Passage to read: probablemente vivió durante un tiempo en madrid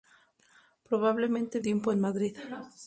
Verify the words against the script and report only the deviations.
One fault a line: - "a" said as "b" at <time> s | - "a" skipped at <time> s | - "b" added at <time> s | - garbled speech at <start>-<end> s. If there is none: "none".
- "vivió durante un" skipped at 1.6 s